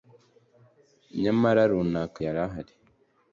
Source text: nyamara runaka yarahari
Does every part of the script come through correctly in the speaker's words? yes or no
yes